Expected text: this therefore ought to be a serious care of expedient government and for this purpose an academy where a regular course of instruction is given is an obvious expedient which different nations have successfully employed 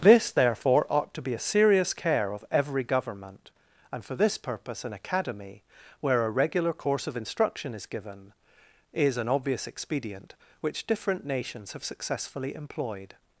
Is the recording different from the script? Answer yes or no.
yes